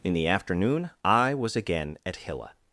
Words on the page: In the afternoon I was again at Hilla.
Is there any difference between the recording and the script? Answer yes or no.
no